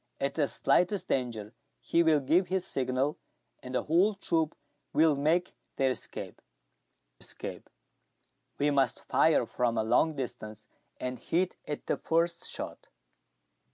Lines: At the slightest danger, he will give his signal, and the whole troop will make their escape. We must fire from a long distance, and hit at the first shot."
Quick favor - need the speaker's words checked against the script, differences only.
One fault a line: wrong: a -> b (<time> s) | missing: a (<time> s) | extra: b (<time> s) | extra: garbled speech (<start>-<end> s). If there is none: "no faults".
extra: escape (7.2 s)